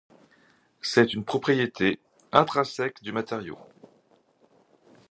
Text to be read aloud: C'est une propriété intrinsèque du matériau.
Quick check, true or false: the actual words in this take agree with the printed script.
true